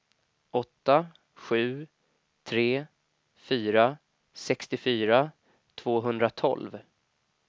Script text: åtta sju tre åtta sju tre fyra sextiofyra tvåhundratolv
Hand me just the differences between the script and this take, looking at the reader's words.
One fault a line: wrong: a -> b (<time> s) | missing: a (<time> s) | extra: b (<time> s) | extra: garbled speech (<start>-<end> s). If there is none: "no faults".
missing: åtta sju tre (2.9 s)